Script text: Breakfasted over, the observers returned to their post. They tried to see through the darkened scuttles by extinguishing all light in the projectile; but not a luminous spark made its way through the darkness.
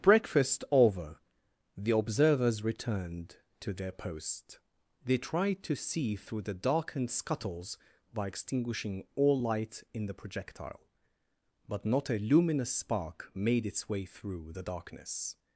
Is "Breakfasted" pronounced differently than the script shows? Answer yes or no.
yes